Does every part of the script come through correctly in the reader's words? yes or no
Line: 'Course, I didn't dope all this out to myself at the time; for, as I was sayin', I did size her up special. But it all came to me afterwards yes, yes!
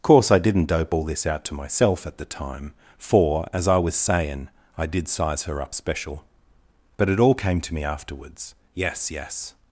yes